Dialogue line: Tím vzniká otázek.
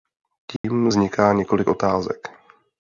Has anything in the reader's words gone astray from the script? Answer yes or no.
yes